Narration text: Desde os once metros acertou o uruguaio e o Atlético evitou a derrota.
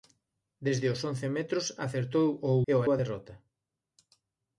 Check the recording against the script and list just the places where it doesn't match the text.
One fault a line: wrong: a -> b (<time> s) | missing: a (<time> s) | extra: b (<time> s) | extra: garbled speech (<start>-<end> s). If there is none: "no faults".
missing: uruguaio (2.5 s)
missing: Atlético evitou (2.8 s)